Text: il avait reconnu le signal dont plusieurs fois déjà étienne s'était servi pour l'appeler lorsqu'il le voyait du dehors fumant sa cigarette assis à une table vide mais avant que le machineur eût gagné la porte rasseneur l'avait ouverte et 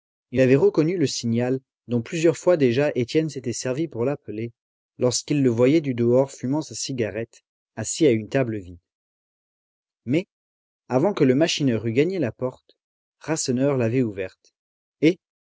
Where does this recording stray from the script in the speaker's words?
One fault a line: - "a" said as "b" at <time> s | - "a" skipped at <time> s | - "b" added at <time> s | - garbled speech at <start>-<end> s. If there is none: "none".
none